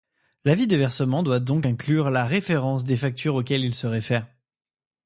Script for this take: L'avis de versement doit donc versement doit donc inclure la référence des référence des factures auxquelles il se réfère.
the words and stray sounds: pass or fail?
fail